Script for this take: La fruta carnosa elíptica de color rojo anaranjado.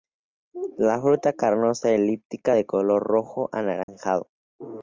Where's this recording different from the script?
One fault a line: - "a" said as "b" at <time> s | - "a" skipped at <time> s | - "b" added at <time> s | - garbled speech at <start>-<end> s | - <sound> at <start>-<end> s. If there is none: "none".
- dropout at 3.8-3.9 s